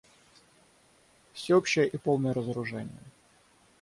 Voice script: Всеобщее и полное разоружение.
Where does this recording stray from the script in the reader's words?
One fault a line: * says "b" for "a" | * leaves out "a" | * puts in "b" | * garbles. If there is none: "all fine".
all fine